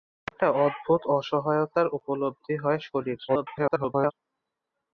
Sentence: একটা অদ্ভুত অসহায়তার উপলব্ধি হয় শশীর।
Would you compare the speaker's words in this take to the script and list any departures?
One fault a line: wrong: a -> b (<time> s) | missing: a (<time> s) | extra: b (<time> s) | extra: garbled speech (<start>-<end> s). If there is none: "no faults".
extra: garbled speech (3.3-4.1 s)